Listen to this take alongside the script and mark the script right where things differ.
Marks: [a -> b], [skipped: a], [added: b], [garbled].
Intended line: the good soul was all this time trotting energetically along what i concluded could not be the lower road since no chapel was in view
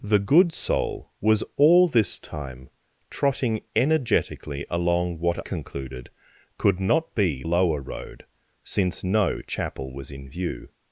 the good soul was all this time trotting energetically along what [skipped: i] concluded could not be [skipped: the] lower road since no chapel was in view